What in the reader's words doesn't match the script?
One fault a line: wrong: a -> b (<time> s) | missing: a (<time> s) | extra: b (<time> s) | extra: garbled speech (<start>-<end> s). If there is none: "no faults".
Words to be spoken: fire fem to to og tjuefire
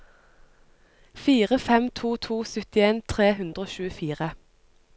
extra: syttien tre hundre (2.5 s)